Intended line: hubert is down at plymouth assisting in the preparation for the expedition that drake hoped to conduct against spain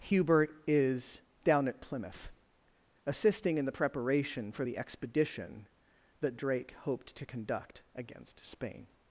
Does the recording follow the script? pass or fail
pass